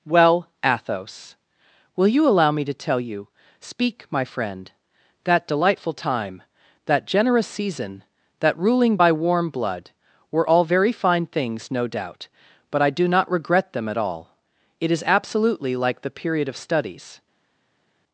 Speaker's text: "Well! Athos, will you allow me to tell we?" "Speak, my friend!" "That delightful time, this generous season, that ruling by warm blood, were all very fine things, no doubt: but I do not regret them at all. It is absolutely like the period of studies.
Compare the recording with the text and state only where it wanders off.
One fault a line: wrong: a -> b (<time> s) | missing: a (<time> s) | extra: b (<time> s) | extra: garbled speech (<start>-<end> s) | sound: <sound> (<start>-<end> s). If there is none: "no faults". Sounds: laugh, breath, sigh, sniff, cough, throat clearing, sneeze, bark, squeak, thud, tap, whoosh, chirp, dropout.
wrong: we -> you (3.0 s)
wrong: this -> that (6.9 s)